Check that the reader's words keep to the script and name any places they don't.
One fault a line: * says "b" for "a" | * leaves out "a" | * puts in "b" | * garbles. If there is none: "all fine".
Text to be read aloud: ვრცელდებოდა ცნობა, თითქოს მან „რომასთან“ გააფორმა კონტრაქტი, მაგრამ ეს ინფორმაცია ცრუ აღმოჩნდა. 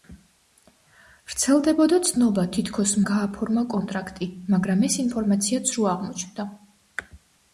* leaves out "მან რომასთან"